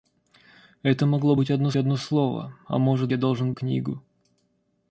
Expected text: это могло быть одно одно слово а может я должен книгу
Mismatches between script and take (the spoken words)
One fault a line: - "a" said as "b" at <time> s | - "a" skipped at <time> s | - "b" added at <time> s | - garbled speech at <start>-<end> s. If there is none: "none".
none